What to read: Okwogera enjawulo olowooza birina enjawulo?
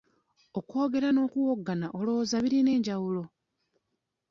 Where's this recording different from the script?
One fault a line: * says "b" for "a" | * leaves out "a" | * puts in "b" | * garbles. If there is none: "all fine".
* says "n'okuwoggana" for "enjawulo"